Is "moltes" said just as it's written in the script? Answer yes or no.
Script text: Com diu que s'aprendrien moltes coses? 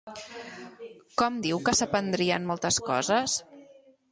yes